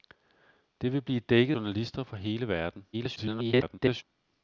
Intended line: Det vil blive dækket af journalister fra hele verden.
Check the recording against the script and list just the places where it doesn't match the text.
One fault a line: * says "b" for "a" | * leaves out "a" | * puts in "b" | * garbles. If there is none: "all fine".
* leaves out "af"
* garbles